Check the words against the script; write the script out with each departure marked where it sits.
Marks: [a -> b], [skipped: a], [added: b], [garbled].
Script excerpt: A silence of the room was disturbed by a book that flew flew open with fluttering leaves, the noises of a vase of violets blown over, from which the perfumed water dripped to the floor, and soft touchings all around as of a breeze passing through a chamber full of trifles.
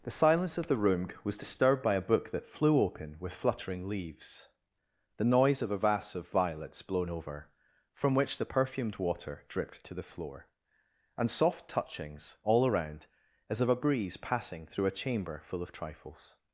[A -> The] silence of the room was disturbed by a book that flew [skipped: flew] open with fluttering leaves, the [noises -> noise] of a vase of violets blown over, from which the perfumed water dripped to the floor, and soft touchings all around as of a breeze passing through a chamber full of trifles.